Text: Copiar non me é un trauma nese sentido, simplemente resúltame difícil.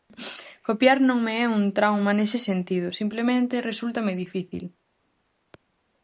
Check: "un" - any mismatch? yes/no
no